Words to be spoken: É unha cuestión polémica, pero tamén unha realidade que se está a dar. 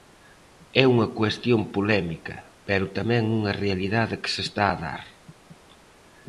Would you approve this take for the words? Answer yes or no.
yes